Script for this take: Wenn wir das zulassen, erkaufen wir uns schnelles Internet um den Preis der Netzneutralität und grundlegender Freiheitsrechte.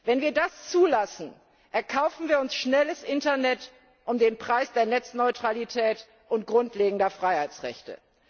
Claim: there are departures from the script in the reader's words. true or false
false